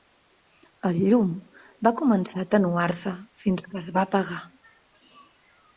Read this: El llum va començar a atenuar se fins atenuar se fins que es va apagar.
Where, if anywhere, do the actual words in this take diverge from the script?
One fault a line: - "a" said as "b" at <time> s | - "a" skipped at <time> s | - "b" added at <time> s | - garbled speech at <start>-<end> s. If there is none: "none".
- "atenuar se fins" skipped at 3.7 s